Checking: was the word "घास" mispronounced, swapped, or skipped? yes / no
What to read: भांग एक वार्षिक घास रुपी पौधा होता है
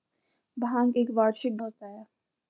yes